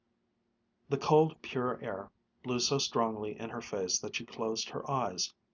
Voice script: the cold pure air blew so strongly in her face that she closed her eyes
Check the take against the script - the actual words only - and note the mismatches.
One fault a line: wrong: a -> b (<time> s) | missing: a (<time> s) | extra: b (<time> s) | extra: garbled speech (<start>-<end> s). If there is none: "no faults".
no faults